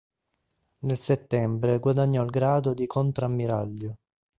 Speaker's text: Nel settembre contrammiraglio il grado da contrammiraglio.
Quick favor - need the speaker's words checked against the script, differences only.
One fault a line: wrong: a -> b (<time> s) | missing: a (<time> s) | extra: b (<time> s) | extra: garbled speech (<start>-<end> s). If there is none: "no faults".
wrong: contrammiraglio -> guadagnò (1.8 s)
wrong: da -> di (2.7 s)